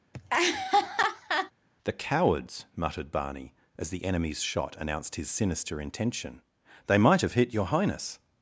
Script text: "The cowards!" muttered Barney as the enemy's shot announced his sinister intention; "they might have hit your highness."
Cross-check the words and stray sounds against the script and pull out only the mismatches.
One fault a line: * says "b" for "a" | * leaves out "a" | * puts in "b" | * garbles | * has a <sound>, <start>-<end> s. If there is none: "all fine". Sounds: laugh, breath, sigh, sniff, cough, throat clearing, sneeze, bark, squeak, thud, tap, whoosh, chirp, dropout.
* has a laugh, 0.1-1.5 s